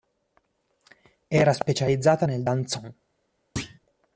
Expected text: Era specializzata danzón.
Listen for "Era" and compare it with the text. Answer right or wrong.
right